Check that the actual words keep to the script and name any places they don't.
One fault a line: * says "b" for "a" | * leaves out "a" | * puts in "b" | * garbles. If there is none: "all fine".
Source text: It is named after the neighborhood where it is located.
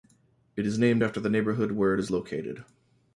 all fine